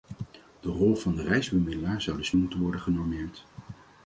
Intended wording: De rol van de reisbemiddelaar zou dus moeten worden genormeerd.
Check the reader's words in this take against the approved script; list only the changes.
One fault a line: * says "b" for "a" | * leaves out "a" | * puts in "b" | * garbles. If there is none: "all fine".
all fine